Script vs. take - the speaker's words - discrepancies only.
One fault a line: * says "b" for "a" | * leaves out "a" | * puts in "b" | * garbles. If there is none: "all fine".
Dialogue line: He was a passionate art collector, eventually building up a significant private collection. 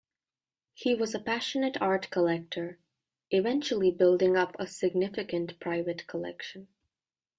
all fine